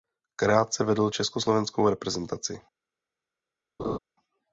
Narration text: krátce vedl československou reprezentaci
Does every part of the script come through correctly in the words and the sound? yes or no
no